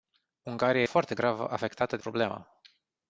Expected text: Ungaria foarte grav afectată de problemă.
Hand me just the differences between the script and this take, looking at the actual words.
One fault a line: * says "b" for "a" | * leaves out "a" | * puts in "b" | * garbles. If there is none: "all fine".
all fine